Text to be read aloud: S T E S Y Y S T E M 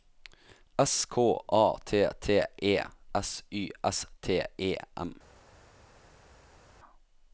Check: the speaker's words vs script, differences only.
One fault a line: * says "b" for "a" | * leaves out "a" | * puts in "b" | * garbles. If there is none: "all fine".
* puts in "K A"
* puts in "T"
* leaves out "Y"